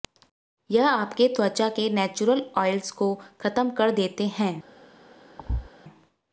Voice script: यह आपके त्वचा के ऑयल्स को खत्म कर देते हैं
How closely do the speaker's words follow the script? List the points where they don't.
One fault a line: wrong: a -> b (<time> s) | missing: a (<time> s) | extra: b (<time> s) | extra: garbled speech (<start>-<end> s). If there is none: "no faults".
extra: नेचुरल (1.9 s)